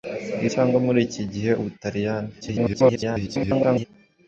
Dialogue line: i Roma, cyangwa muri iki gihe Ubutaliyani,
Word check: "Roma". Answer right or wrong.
wrong